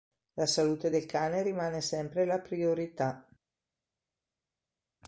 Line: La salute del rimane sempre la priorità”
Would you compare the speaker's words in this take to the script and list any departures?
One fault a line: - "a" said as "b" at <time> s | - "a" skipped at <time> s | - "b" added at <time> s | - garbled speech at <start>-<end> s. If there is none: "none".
- "cane" added at 1.0 s